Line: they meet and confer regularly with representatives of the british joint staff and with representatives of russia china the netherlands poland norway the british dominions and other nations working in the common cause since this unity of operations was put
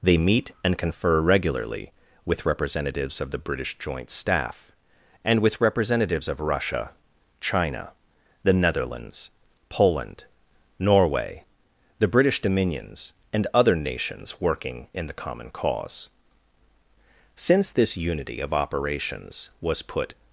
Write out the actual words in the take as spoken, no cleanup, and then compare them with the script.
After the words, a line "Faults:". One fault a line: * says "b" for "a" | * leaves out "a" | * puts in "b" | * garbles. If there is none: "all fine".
they meet and confer regularly with representatives of the british joint staff and with representatives of russia china the netherlands poland norway the british dominions and other nations working in the common cause since this unity of operations was put
Faults:
all fine